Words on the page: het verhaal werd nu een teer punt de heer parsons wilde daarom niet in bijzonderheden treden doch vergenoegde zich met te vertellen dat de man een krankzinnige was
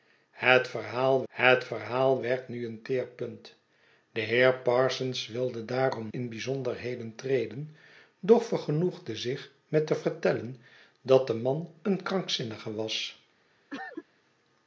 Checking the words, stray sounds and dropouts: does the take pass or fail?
fail